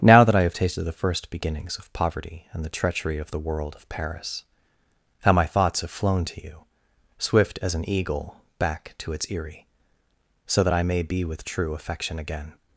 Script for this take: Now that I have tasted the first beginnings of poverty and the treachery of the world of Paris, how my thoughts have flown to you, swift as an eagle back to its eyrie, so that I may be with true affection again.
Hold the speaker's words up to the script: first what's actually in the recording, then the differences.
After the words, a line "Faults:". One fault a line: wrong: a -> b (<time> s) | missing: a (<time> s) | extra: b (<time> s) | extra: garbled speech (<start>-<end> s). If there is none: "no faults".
Now that I have tasted the first beginnings of poverty and the treachery of the world of Paris, how my thoughts have flown to you, swift as an eagle back to its eyrie, so that I may be with true affection again.
Faults:
no faults